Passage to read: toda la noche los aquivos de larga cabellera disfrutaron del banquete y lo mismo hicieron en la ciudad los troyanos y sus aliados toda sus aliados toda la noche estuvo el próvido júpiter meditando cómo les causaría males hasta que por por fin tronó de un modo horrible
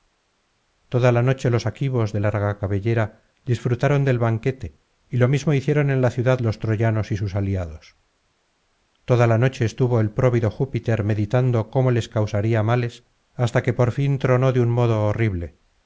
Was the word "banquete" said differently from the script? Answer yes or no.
no